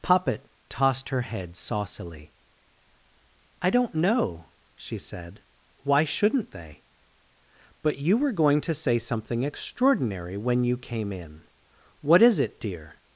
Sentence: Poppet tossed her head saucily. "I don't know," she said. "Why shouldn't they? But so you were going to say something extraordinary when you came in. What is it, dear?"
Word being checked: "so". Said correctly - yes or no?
no